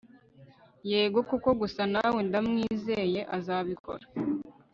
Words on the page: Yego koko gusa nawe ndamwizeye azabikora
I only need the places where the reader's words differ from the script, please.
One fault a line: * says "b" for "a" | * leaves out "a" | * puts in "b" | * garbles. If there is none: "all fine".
all fine